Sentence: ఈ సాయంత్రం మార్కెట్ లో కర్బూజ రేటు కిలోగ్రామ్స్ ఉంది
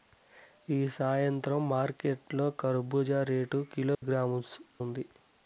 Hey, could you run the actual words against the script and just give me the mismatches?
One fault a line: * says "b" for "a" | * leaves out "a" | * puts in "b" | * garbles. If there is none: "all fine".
all fine